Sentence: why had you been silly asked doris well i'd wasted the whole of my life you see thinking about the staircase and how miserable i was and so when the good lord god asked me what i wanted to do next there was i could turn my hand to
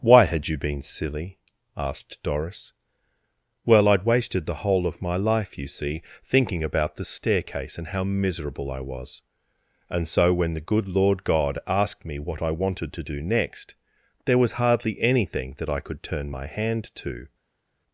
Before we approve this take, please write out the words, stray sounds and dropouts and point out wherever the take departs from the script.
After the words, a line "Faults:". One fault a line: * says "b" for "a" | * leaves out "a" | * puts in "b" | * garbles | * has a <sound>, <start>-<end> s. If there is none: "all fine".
why had you been silly asked doris well i'd wasted the whole of my life you see thinking about the staircase and how miserable i was and so when the good lord god asked me what i wanted to do next there was hardly anything that i could turn my hand to
Faults:
* puts in "hardly anything that"